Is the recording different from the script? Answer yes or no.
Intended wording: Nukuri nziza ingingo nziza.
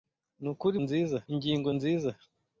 no